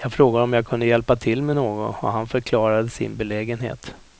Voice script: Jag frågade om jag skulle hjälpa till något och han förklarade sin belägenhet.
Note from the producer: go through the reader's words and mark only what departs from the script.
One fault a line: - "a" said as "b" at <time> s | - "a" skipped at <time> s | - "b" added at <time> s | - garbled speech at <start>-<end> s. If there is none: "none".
- "skulle" said as "kunde" at 0.7 s
- "med" added at 1.4 s